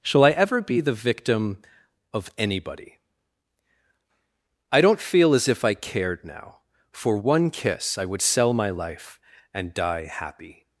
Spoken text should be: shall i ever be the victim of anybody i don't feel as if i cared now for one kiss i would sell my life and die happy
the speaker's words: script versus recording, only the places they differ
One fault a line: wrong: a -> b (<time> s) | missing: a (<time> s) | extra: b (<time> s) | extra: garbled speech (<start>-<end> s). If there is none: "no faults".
no faults